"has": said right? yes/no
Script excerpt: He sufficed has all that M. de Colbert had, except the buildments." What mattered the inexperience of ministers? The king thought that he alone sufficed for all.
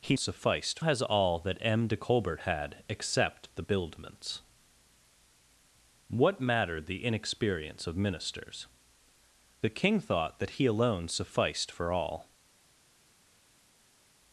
yes